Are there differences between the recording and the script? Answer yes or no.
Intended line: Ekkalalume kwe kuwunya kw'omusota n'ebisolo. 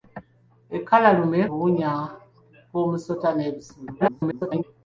yes